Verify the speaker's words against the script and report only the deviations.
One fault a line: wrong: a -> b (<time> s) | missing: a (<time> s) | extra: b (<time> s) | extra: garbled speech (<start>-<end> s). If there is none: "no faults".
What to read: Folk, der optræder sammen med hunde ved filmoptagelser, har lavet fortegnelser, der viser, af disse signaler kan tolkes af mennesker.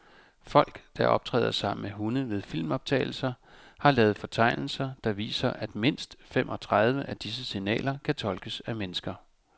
extra: at mindst femogtredive (5.5 s)